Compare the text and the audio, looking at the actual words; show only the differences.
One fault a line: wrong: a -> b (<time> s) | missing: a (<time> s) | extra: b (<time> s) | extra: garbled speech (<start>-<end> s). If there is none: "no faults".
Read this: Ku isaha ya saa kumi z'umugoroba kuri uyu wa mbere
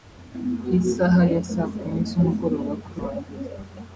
missing: uyu (3.0 s)